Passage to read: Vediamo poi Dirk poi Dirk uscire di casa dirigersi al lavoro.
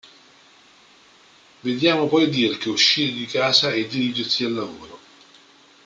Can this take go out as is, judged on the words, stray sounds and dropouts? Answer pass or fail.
fail